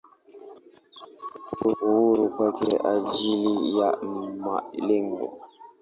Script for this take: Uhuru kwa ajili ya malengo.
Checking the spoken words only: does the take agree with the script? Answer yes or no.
yes